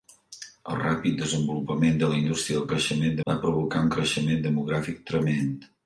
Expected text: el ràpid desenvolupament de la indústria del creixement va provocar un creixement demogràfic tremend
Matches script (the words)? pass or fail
pass